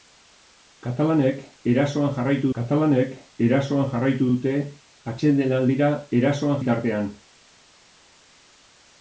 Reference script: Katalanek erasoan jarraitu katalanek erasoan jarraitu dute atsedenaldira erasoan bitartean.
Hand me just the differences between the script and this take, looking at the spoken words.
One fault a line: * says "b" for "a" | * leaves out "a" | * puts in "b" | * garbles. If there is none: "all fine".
all fine